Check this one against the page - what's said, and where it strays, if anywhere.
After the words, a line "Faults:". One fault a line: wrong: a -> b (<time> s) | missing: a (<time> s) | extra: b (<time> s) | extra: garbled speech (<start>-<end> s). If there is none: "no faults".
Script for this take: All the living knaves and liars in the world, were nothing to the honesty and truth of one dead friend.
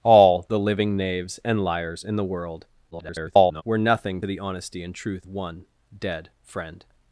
All the living knaves and liars in the world, [garbled] were nothing the honesty and truth one dead friend.
Faults:
extra: garbled speech (2.9-3.6 s)
missing: to (4.2 s)
missing: of (5.3 s)